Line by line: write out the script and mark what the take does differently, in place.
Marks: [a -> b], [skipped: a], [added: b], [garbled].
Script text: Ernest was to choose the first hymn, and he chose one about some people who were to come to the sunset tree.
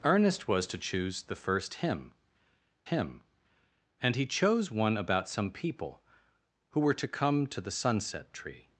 Ernest was to choose the first hymn, [added: hymn] and he chose one about some people who were to come to the sunset tree.